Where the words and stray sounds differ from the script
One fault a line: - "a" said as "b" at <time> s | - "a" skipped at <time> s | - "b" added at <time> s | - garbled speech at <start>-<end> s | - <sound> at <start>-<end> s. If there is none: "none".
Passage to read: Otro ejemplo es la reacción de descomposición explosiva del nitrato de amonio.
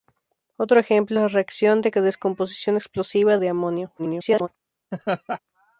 - "del nitrato" skipped at 3.4 s
- garbled speech at 4.0-4.5 s
- laugh at 4.9-5.4 s